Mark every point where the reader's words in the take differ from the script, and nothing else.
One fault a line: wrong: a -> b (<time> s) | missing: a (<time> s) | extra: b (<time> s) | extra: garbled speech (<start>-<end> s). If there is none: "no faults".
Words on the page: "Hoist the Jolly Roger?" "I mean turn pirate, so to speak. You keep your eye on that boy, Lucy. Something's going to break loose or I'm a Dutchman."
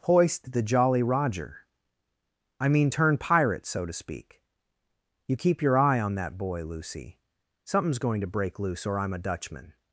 no faults